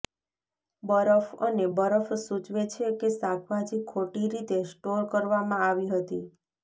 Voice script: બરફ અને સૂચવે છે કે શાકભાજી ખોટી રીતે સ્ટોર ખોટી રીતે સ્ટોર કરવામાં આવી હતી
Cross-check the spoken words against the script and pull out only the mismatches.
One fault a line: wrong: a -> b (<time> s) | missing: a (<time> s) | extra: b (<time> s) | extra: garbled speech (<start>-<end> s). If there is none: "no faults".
extra: બરફ (1.7 s)
missing: ખોટી રીતે સ્ટોર (5.0 s)